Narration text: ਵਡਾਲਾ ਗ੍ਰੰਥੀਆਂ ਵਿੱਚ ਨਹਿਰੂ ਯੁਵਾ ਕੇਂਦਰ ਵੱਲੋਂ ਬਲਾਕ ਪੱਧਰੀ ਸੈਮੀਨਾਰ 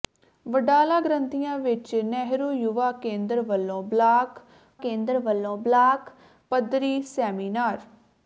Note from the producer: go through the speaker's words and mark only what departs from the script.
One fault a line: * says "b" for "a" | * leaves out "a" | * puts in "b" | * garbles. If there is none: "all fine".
* puts in "ਕੇਂਦਰ ਵੱਲੋਂ ਬਲਾਕ"